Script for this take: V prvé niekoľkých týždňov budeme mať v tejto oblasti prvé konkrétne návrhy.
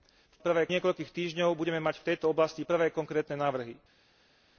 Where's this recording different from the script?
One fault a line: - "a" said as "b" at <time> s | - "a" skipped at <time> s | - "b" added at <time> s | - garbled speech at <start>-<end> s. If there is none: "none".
none